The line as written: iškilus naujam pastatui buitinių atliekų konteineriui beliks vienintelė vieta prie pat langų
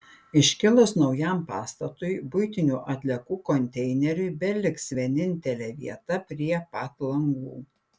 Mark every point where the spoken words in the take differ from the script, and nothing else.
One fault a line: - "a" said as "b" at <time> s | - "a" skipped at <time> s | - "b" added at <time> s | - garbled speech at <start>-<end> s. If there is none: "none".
none